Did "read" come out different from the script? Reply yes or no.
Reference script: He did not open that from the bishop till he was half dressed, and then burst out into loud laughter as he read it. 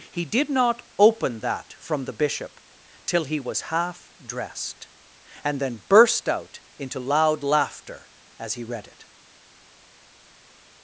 no